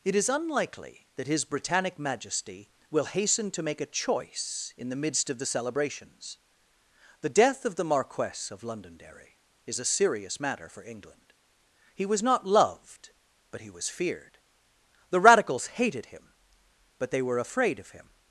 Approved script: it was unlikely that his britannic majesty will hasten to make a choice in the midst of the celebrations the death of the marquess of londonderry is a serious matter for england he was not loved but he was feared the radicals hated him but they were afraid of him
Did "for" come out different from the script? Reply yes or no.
no